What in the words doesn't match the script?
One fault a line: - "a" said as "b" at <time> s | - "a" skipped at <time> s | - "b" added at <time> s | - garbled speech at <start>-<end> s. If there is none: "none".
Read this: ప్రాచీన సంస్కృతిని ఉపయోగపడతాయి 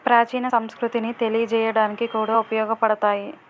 - "తెలియజేయడానికి కూడా" added at 1.1 s